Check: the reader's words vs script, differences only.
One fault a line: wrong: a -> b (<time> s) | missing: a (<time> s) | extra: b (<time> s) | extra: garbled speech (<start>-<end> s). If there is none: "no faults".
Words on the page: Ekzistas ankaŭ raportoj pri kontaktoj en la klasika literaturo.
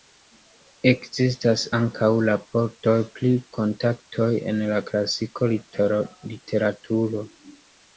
no faults